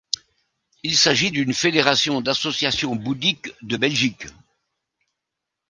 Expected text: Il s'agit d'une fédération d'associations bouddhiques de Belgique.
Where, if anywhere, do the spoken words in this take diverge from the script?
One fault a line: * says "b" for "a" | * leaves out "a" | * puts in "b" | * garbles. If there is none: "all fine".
all fine